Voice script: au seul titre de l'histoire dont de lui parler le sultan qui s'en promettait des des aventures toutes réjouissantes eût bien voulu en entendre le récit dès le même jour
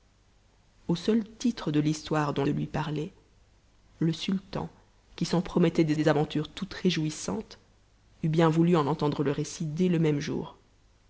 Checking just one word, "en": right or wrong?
right